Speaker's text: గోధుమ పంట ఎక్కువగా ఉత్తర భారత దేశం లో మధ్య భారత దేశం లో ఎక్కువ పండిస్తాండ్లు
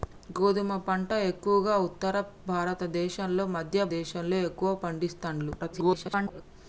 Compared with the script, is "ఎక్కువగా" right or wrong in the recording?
right